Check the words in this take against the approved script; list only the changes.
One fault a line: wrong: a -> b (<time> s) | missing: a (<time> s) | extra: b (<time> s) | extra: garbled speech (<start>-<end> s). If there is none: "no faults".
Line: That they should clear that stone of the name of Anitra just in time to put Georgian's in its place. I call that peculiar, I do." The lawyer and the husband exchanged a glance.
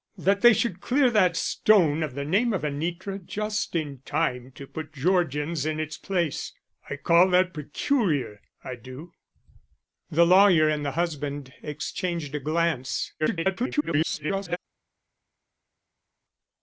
extra: garbled speech (13.2-14.6 s)